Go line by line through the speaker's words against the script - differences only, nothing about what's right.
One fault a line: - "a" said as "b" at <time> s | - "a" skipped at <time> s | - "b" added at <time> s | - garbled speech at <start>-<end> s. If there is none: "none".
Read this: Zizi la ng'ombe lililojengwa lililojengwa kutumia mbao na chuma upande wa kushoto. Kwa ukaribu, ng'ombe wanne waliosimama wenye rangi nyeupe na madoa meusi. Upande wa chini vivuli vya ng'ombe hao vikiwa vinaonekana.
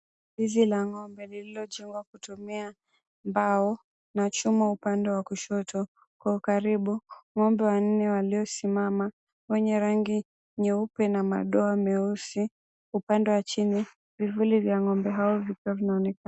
- "lililojengwa" skipped at 2.0 s